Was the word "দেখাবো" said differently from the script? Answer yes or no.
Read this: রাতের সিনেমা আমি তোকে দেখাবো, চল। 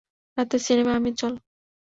yes